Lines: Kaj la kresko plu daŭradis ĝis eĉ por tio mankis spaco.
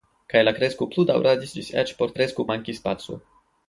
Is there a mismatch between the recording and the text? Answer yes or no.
yes